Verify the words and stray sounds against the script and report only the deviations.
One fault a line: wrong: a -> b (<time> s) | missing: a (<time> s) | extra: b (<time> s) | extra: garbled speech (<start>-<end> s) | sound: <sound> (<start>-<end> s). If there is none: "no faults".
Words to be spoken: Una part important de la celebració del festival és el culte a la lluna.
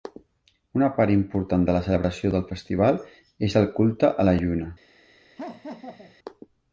sound: laugh (5.4-6.2 s)